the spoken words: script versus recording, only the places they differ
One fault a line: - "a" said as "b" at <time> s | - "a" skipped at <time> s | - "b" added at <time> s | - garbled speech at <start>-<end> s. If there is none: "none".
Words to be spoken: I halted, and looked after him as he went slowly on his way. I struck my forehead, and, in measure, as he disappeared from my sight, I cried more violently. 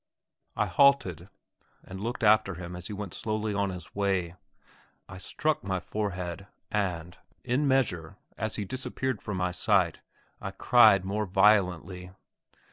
none